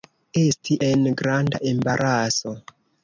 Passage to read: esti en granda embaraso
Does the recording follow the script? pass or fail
pass